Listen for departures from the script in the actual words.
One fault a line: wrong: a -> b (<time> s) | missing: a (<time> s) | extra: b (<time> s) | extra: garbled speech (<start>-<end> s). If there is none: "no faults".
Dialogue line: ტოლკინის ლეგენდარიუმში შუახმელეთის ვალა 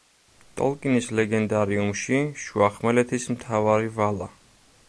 extra: მთავარი (3.4 s)